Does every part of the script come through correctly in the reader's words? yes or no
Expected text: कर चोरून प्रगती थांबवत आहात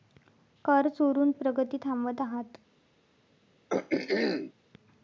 yes